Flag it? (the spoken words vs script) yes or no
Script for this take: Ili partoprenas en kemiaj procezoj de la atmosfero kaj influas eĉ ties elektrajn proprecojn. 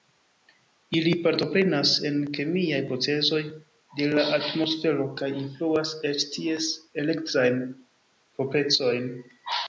no